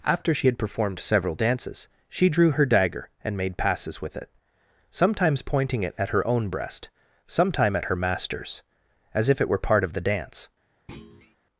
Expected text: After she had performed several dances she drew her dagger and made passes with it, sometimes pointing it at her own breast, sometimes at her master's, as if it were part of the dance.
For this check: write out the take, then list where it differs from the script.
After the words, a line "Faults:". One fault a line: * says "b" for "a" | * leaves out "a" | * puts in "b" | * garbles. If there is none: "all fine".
After she had performed several dances she drew her dagger and made passes with it, sometimes pointing it at her own breast, sometime at her master's, as if it were part of the dance.
Faults:
* says "sometime" for "sometimes"